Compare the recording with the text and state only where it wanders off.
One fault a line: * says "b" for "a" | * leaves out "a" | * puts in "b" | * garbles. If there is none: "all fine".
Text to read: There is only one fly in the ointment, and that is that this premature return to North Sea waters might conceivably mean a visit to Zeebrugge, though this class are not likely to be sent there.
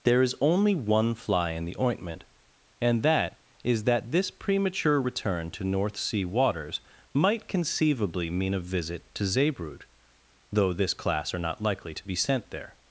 all fine